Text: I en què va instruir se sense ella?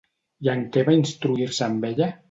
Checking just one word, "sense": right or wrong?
wrong